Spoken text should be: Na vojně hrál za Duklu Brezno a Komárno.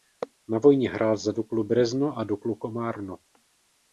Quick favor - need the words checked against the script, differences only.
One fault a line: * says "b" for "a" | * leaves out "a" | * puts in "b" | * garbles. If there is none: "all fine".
* puts in "Duklu"